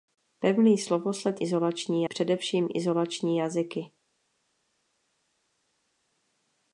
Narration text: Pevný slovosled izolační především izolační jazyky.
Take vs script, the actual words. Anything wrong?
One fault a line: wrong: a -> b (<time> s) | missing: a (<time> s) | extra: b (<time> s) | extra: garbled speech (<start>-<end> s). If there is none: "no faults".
no faults